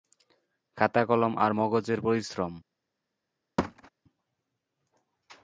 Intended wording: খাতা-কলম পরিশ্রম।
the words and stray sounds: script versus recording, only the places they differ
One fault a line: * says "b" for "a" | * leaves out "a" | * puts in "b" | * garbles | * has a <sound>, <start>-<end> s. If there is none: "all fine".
* puts in "আর মগজের"
* has a thud, 3.6-3.9 s